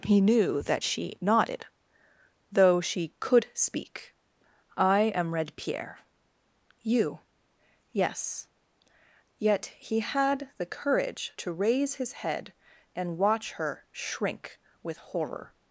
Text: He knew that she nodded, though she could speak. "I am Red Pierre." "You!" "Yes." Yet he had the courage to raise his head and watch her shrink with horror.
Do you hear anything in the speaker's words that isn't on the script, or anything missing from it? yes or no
no